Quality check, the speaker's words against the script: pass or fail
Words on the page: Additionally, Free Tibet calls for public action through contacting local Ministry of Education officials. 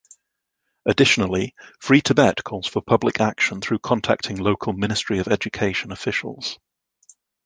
pass